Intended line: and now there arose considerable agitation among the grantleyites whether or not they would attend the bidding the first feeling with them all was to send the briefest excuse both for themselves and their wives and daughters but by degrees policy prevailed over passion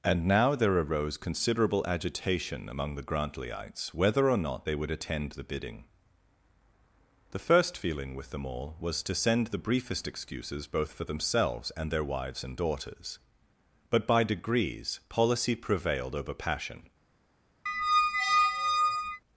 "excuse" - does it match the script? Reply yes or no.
no